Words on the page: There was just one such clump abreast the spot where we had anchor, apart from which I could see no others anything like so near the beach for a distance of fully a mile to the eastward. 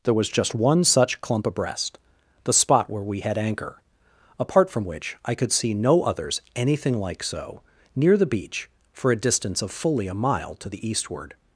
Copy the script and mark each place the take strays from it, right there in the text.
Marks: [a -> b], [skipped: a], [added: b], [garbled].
There was just one such clump abreast the spot where we had anchor, apart from which I could see no others anything like so near the beach for a distance of fully a mile to the eastward.